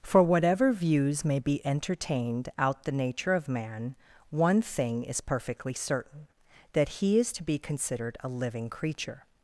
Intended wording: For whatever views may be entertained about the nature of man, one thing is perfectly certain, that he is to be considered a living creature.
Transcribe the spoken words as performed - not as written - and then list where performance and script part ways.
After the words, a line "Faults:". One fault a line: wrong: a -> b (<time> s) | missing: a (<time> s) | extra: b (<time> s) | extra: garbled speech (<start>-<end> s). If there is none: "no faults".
For whatever views may be entertained out the nature of man, one thing is perfectly certain, that he is to be considered a living creature.
Faults:
wrong: about -> out (2.6 s)